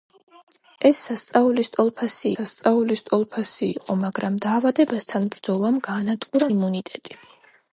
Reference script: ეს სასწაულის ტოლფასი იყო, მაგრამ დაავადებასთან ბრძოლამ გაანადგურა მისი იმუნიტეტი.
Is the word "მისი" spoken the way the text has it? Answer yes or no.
no